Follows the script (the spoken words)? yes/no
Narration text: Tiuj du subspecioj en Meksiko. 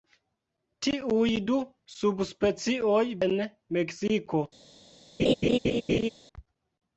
yes